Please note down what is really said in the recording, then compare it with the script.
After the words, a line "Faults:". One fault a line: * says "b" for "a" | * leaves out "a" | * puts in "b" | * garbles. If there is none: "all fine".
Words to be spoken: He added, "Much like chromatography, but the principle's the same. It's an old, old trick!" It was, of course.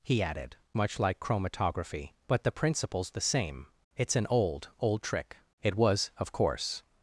He added, "Much like chromatography, but the principle's the same. It's an old, old trick!" It was, of course.
Faults:
all fine